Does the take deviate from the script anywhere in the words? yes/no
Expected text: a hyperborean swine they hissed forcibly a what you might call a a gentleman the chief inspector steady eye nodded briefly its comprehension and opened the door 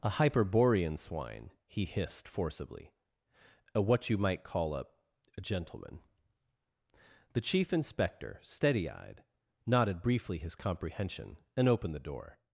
yes